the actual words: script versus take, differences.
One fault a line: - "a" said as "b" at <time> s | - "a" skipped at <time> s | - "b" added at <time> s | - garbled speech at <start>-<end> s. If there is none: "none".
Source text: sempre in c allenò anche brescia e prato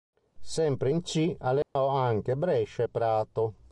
none